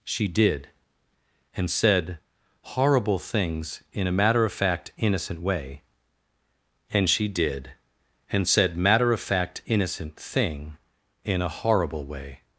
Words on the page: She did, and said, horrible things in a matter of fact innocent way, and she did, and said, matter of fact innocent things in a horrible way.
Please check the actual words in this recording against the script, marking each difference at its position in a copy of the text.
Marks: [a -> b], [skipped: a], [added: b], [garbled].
She did, and said, horrible things in a matter of fact innocent way, and she did, and said, matter of fact innocent [things -> thing] in a horrible way.